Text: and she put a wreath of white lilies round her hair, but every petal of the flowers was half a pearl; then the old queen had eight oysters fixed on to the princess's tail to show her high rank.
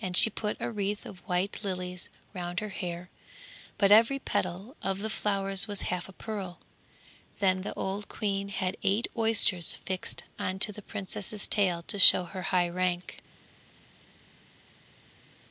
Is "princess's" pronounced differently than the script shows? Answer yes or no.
no